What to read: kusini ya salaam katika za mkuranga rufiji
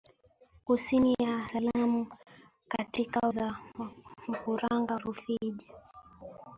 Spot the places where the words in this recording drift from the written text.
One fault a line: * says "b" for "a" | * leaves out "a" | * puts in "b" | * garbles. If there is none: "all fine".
all fine